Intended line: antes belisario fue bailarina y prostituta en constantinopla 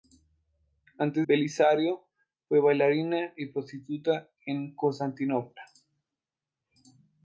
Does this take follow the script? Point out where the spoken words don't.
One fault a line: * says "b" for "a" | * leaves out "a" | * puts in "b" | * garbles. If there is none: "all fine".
all fine